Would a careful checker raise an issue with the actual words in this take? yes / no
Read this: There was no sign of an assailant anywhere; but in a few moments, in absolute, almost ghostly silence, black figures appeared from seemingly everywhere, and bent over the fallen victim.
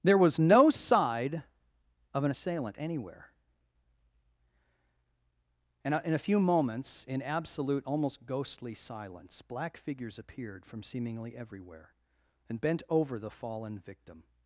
yes